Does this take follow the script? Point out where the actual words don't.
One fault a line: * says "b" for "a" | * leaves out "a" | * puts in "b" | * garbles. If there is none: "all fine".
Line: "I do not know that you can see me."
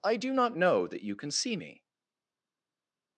all fine